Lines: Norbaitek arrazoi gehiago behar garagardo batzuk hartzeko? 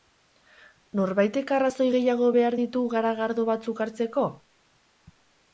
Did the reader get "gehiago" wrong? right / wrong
right